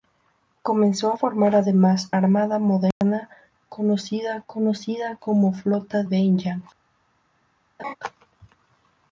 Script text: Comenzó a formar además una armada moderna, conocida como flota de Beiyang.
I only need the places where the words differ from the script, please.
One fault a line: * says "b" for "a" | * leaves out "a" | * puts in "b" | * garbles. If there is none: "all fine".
* leaves out "una"
* puts in "conocida"
* leaves out "de"